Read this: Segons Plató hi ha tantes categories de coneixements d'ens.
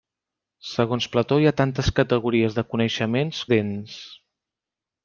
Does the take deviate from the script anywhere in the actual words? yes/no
no